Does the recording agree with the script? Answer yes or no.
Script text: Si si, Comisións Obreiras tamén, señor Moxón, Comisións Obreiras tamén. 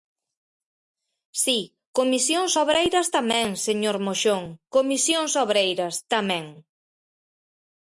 no